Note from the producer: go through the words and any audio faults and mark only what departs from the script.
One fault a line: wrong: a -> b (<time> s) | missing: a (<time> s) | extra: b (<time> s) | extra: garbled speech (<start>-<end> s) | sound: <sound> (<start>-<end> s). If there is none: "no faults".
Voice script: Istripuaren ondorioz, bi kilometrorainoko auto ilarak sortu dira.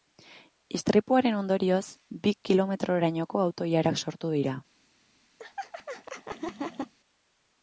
sound: laugh (5.4-6.9 s)